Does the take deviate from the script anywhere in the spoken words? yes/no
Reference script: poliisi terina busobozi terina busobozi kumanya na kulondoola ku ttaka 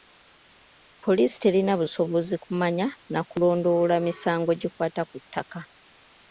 yes